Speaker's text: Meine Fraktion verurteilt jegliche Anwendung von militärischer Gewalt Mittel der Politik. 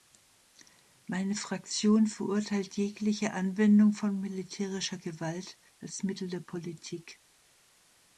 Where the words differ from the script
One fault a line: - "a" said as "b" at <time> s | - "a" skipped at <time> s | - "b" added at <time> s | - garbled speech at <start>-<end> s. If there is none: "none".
- "als" added at 5.8 s